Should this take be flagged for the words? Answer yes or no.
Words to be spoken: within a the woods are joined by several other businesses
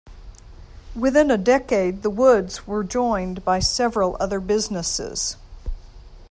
yes